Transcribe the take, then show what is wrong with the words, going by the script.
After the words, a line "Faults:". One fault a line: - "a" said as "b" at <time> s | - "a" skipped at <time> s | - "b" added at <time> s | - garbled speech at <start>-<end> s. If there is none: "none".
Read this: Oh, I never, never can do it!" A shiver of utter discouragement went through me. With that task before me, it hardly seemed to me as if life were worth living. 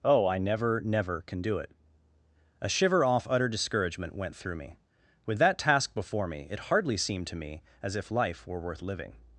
Oh, I never, never can do it!" A shiver off utter discouragement went through me. With that task before me, it hardly seemed to me as if life were worth living.
Faults:
- "of" said as "off" at 3.0 s